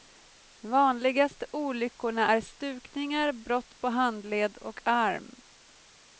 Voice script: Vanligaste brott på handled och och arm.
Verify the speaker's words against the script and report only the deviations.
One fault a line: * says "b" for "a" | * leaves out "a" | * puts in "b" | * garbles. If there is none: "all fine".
* puts in "olyckorna är stukningar"
* leaves out "och"